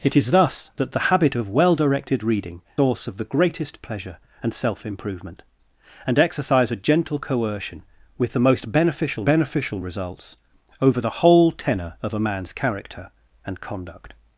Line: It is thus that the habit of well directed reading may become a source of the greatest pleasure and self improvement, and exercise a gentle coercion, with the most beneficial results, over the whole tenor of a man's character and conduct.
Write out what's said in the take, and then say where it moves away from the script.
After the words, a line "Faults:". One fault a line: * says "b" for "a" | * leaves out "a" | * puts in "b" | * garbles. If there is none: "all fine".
It is thus that the habit of well directed reading source of the greatest pleasure and self improvement, and exercise a gentle coercion, with the most beneficial beneficial results, over the whole tenor of a man's character and conduct.
Faults:
* leaves out "may become a"
* puts in "beneficial"